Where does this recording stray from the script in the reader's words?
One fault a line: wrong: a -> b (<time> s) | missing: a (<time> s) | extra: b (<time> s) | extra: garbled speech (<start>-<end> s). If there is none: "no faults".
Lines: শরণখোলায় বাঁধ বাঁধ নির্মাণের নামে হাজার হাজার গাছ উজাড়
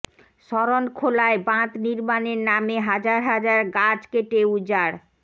missing: বাঁধ (1.7 s)
extra: কেটে (4.1 s)